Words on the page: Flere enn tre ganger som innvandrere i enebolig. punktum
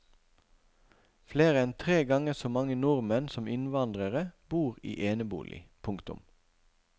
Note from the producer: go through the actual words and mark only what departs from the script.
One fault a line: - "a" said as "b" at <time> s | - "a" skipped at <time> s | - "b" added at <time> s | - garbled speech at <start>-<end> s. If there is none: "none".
- "så mange nordmenn" added at 2.4 s
- "bor" added at 4.5 s